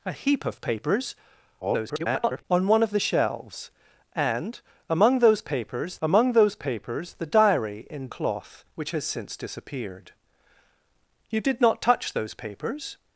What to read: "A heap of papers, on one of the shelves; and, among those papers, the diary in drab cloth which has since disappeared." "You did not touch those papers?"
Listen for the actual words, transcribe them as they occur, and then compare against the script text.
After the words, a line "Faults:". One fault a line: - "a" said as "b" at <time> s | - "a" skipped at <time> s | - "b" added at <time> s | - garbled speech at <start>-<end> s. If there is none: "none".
"A heap of papers, [garbled] on one of the shelves; and, among those papers among those papers, the diary in cloth which has since disappeared." "You did not touch those papers?"
Faults:
- garbled speech at 1.6-2.4 s
- "among those papers" added at 6.0 s
- "drab" skipped at 8.1 s